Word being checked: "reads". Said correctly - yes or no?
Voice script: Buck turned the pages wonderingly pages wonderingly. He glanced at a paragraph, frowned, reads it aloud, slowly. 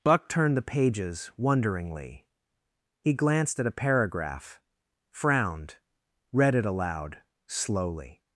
no